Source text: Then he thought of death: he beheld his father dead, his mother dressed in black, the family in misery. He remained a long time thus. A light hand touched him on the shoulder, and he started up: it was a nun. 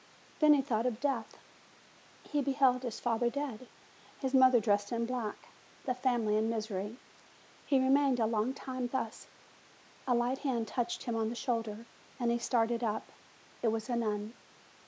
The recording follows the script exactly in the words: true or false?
true